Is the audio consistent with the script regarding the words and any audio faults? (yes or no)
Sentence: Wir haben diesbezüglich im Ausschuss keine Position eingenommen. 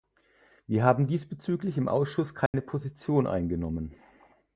no